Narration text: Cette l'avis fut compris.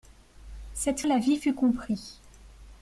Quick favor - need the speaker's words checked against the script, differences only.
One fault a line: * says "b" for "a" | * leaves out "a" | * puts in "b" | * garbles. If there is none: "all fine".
all fine